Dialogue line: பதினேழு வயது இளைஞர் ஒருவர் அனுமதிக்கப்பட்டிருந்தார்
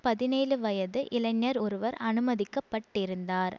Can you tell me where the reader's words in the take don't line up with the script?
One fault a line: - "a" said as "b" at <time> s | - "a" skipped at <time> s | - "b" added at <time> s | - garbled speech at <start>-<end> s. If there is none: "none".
none